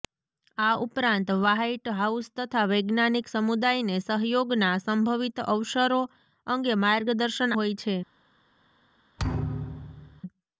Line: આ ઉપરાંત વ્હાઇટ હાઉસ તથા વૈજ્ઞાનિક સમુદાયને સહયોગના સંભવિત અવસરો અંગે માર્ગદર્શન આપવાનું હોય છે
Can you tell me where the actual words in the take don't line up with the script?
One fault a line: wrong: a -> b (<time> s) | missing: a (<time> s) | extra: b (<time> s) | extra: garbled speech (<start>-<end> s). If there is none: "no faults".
missing: આપવાનું (7.5 s)